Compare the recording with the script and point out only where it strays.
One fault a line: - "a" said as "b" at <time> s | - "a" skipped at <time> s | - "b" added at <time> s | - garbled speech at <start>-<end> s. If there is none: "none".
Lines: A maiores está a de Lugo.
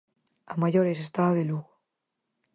none